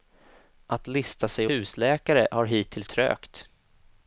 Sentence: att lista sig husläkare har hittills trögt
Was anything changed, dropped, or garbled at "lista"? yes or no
no